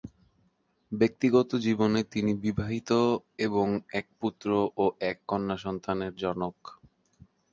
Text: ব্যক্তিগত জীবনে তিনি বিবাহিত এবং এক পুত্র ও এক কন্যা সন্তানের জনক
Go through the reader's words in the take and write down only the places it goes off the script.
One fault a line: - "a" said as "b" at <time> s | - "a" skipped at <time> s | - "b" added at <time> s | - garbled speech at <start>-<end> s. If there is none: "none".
none